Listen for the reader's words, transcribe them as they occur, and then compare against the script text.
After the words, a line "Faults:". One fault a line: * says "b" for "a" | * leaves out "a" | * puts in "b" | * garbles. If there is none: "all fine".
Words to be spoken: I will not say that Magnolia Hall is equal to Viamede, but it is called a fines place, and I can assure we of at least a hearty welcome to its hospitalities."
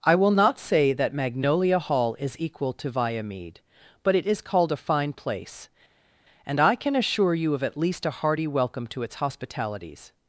I will not say that Magnolia Hall is equal to Viamede, but it is called a fine place, and I can assure you of at least a hearty welcome to its hospitalities."
Faults:
* says "fine" for "fines"
* says "you" for "we"